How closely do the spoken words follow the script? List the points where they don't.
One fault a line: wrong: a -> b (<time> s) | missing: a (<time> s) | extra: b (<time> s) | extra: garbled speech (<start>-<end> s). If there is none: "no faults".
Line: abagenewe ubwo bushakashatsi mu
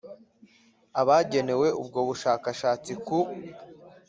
wrong: mu -> ku (3.1 s)